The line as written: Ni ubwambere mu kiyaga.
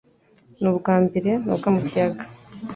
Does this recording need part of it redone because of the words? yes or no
yes